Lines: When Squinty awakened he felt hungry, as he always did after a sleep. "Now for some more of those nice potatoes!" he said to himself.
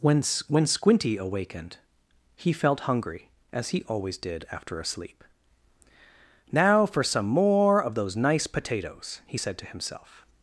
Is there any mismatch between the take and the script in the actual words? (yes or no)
yes